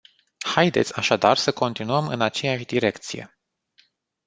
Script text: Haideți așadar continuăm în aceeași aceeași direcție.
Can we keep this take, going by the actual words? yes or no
no